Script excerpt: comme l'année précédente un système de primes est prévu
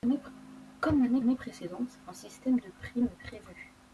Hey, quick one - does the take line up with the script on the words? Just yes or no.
no